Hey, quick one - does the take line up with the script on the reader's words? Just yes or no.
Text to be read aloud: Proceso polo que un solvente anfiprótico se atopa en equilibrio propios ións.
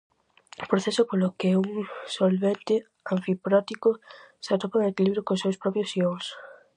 no